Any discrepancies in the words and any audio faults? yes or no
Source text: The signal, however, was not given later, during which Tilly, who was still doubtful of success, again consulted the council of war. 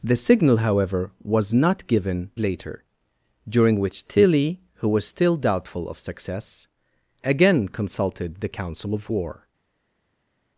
no